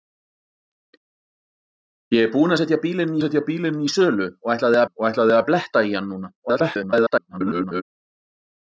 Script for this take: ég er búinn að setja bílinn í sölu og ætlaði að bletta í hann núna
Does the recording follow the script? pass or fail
fail